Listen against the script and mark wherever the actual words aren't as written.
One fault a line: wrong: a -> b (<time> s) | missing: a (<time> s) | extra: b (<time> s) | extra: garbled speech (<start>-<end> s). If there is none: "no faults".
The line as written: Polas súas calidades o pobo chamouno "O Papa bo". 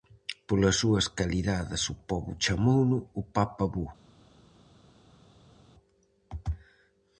no faults